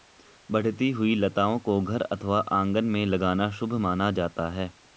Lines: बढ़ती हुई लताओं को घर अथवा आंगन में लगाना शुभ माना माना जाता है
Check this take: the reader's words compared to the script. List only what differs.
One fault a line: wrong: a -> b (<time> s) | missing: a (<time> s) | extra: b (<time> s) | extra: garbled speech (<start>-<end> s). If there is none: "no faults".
missing: माना (4.1 s)